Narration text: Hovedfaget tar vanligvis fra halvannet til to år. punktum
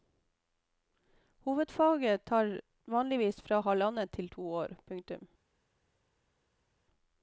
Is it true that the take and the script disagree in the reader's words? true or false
false